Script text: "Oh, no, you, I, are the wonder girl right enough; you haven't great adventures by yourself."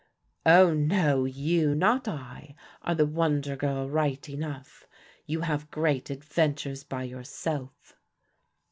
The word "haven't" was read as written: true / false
false